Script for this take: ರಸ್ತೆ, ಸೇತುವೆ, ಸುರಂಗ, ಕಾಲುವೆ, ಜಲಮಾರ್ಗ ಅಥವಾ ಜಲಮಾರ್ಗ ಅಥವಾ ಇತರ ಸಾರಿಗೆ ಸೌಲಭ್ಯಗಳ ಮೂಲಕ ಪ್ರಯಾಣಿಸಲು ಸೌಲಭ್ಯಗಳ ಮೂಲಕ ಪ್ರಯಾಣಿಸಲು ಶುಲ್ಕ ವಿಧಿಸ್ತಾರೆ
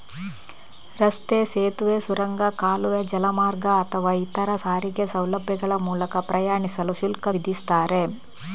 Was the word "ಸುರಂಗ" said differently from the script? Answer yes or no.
no